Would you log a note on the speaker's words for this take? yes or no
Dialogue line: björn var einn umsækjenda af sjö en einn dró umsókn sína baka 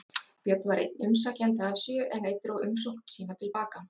yes